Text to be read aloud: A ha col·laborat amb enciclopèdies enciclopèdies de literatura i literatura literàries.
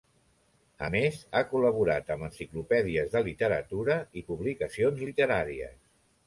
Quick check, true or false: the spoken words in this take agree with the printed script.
false